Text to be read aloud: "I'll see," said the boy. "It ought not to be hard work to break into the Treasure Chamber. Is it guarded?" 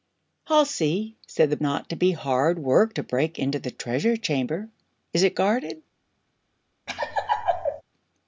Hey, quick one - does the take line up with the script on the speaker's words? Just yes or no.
no